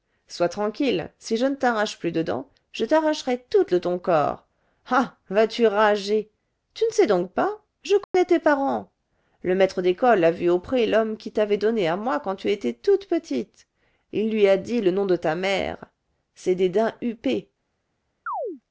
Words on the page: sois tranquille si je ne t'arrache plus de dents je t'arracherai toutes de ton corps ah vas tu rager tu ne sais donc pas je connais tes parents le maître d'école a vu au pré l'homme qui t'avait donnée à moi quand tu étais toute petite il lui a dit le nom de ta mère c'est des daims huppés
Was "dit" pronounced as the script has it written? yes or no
yes